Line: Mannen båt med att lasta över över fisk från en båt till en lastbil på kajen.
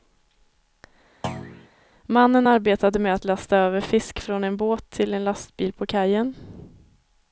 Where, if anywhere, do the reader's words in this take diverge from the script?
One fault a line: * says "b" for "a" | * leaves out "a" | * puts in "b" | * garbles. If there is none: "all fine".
* says "arbetade" for "båt"
* leaves out "över"